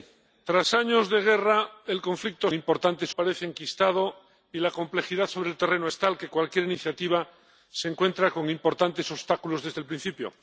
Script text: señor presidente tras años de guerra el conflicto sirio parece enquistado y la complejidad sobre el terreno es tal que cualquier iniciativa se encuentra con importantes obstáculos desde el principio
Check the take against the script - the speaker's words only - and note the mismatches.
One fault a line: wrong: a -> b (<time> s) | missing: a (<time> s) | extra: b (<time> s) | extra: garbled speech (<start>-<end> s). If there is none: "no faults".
wrong: sirio -> importantes (2.5 s)